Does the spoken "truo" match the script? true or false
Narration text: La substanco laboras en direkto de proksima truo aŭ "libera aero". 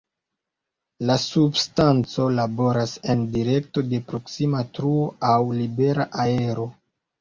true